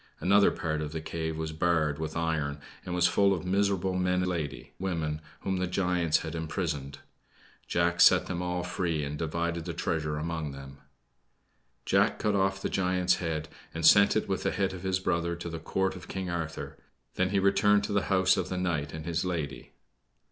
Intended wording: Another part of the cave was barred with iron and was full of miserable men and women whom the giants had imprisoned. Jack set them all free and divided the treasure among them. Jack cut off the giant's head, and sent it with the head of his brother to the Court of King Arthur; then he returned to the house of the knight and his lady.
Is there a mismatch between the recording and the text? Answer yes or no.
yes